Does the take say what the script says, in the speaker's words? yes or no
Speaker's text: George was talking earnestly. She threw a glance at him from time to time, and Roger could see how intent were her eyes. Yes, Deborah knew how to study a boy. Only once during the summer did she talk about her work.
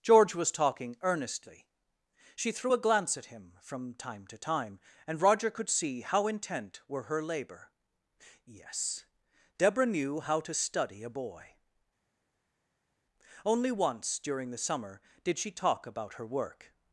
no